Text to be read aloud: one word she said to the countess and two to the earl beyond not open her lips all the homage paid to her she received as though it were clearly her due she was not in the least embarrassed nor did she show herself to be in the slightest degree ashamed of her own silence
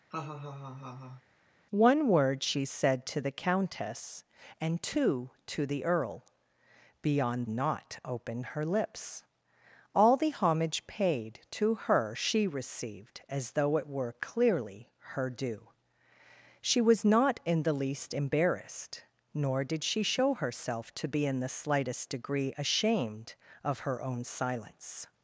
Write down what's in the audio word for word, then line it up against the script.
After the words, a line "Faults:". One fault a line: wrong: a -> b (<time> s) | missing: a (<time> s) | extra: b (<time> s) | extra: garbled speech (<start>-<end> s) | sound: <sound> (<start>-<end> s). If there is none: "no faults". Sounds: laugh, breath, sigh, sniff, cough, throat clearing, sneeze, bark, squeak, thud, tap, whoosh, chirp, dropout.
one word she said to the countess and two to the earl beyond not open her lips all the homage paid to her she received as though it were clearly her due she was not in the least embarrassed nor did she show herself to be in the slightest degree ashamed of her own silence
Faults:
sound: laugh (0.1-1.2 s)